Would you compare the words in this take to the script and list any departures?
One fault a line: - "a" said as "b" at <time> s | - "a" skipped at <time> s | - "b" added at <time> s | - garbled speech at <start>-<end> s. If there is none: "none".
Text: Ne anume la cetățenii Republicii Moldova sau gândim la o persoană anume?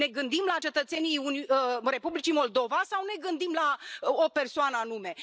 - "anume" said as "gândim" at 0.1 s
- "ne" added at 3.0 s